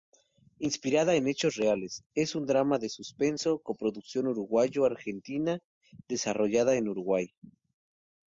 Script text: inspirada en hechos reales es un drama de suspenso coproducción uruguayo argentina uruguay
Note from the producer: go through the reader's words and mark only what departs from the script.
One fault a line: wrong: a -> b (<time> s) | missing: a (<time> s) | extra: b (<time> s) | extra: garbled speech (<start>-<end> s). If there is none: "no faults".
extra: desarrollada en (6.1 s)